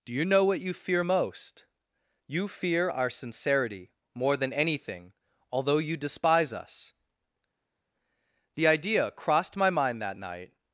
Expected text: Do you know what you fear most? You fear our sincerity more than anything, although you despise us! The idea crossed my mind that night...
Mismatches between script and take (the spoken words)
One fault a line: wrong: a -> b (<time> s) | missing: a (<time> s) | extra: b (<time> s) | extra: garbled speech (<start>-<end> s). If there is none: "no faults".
no faults